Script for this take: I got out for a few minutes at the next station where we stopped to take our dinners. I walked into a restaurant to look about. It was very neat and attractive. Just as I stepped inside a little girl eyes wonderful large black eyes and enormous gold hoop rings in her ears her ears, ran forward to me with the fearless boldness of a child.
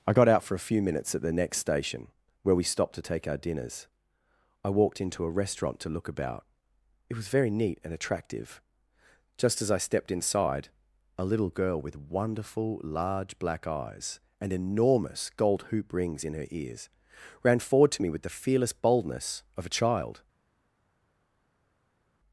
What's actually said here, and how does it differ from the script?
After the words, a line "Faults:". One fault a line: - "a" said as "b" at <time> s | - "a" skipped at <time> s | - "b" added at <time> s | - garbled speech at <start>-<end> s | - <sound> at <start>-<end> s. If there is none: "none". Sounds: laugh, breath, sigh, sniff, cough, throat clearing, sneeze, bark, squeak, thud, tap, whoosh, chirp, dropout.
I got out for a few minutes at the next station where we stopped to take our dinners. I walked into a restaurant to look about. It was very neat and attractive. Just as I stepped inside a little girl with wonderful large black eyes and enormous gold hoop rings in her ears, ran forward to me with the fearless boldness of a child.
Faults:
- "eyes" said as "with" at 11.8 s
- "her ears" skipped at 16.9 s